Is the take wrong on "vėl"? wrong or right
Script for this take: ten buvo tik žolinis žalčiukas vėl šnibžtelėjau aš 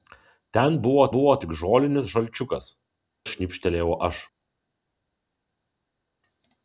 wrong